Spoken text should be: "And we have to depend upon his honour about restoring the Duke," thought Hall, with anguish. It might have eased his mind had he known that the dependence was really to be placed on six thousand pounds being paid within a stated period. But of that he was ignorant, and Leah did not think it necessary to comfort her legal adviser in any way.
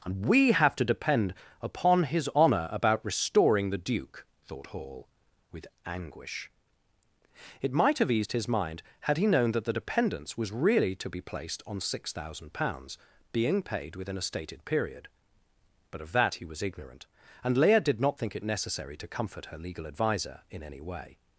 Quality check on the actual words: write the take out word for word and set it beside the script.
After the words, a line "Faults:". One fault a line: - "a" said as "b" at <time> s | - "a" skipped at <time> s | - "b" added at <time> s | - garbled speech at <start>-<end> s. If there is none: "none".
"And we have to depend upon his honour about restoring the Duke," thought Hall, with anguish. It might have eased his mind had he known that the dependence was really to be placed on six thousand pounds being paid within a stated period. But of that he was ignorant, and Leah did not think it necessary to comfort her legal adviser in any way.
Faults:
none